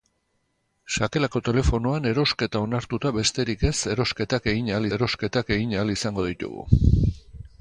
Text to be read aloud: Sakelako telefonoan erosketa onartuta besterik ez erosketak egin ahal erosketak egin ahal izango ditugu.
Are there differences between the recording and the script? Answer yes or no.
no